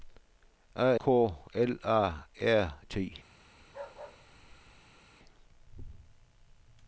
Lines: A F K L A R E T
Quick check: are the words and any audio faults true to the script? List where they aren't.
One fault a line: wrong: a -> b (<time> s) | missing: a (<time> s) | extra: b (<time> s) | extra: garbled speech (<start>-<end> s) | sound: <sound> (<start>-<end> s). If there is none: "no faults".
missing: F (1.0 s)
missing: E (2.8 s)
sound: bark (3.6-5.0 s)